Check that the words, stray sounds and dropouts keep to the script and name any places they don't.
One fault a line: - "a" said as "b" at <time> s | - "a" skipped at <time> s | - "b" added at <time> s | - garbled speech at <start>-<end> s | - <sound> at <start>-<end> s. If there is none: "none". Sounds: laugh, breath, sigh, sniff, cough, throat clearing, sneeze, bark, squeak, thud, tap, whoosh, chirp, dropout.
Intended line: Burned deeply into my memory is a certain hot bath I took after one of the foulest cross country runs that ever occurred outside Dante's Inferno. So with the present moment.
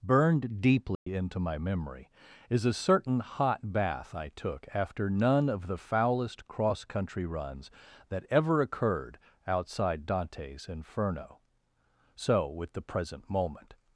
- dropout at 0.9-1.1 s
- "one" said as "none" at 5.1 s